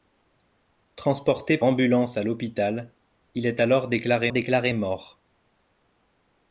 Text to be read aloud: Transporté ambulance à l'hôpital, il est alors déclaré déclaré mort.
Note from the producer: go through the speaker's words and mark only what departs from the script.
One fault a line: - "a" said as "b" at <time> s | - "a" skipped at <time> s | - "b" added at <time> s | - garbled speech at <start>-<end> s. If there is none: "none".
none